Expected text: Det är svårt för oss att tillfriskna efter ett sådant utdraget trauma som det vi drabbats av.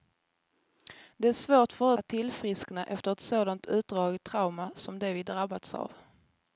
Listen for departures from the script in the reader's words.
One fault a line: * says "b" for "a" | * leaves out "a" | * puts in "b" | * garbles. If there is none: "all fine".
* leaves out "oss"